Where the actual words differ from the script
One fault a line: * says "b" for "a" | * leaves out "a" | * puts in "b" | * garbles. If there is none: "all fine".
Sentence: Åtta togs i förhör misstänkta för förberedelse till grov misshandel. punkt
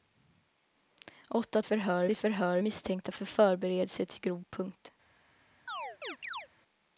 * says "förhör" for "togs"
* leaves out "misshandel"